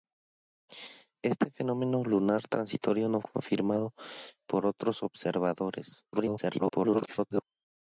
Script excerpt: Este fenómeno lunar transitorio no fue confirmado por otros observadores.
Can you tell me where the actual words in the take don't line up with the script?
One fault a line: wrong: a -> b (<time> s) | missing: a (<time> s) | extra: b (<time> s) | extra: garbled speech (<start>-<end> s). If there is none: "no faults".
missing: fue (3.2 s)
extra: garbled speech (6.1-7.4 s)